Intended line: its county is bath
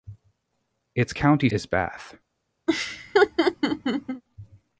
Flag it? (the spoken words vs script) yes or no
no